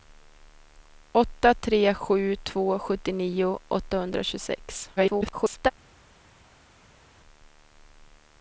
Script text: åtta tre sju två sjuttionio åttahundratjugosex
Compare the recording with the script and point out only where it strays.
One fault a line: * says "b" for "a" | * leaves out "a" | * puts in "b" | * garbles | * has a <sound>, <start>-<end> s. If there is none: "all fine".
* garbles